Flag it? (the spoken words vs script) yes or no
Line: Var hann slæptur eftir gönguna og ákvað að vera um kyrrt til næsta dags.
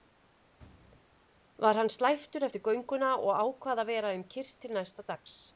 no